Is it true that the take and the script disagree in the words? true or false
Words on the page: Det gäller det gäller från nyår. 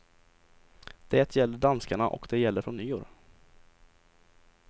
true